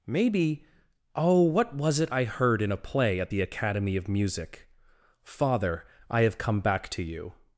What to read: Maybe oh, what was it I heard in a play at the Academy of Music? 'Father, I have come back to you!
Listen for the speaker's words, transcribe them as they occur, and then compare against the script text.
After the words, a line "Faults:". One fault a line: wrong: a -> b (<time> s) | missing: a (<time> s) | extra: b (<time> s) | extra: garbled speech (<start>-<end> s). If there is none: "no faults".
Maybe oh, what was it I heard in a play at the Academy of Music? 'Father, I have come back to you!
Faults:
no faults